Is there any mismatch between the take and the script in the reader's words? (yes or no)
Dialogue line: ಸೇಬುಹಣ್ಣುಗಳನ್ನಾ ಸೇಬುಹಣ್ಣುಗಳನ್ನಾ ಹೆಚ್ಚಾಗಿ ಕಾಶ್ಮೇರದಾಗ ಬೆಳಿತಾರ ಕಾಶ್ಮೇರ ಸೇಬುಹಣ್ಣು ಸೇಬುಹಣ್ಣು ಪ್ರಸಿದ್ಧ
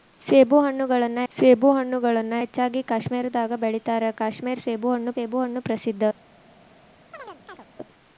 no